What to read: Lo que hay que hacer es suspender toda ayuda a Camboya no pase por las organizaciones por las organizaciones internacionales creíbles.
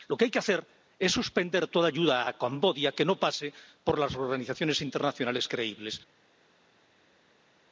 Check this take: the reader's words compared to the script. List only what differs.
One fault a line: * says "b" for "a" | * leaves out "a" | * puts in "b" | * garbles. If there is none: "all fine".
* puts in "que"
* leaves out "por las organizaciones"